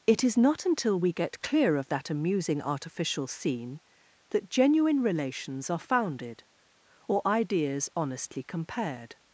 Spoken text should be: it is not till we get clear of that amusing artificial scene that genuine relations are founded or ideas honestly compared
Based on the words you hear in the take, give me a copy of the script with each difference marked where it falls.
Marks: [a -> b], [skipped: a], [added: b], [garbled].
it is not [till -> until] we get clear of that amusing artificial scene that genuine relations are founded or ideas honestly compared